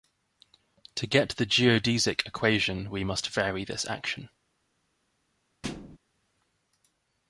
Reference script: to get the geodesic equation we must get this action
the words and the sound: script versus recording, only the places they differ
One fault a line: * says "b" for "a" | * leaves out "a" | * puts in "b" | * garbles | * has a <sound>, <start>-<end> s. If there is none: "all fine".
* says "vary" for "get"
* has a thud, 5.6-6.0 s